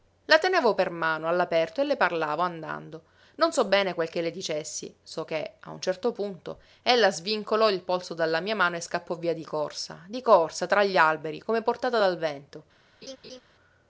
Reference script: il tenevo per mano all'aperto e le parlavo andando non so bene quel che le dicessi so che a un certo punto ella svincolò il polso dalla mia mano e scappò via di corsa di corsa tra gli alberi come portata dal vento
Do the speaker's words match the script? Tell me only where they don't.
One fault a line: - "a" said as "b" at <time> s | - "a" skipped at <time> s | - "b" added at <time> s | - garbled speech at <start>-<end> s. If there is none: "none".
- "il" said as "la" at 0.2 s